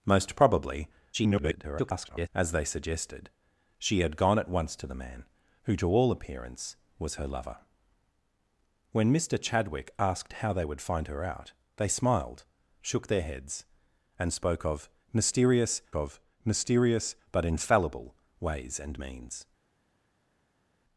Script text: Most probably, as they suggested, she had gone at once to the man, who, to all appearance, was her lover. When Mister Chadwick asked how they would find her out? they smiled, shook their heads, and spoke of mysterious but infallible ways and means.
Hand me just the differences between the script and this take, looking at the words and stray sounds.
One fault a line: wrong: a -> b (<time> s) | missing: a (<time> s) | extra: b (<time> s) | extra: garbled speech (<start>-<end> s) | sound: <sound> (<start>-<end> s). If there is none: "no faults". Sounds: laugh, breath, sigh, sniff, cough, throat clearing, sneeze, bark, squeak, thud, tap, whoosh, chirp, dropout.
extra: garbled speech (1.1-2.3 s)
extra: of mysterious (15.9 s)